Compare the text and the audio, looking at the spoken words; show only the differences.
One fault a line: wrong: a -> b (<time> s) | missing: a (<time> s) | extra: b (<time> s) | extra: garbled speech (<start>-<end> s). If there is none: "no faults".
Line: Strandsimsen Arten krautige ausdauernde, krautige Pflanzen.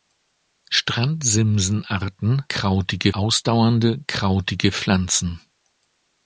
no faults